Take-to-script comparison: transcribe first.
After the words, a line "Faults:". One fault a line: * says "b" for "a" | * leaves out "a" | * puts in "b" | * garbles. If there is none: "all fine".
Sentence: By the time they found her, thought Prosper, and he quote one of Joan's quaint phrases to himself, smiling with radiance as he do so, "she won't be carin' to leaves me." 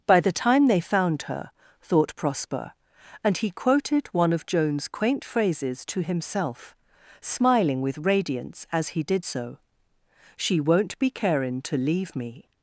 By the time they found her, thought Prosper, and he quoted one of Joan's quaint phrases to himself, smiling with radiance as he did so, "she won't be carin' to leave me."
Faults:
* says "quoted" for "quote"
* says "did" for "do"
* says "leave" for "leaves"